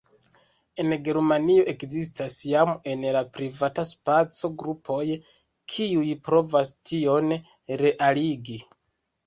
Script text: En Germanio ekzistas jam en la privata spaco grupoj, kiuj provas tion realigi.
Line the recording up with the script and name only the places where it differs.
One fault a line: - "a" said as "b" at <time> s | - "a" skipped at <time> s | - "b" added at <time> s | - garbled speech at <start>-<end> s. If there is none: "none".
none